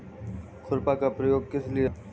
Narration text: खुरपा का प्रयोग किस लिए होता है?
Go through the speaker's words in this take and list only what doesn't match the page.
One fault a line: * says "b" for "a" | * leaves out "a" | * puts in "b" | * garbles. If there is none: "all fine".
* leaves out "होता"